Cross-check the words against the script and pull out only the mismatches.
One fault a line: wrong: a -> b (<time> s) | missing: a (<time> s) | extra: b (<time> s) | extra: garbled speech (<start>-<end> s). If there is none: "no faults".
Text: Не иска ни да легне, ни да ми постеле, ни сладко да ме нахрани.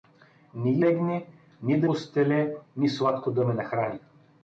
missing: иска ни да (0.8 s)
missing: ми (1.9 s)